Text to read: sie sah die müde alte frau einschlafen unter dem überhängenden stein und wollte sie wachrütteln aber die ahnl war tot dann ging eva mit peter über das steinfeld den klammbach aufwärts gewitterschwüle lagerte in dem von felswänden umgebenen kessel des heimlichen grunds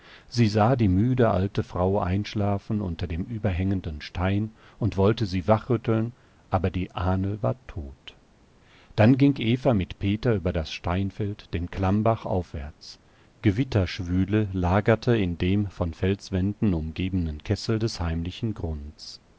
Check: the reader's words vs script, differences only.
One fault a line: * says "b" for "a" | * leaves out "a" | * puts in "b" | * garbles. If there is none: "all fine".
all fine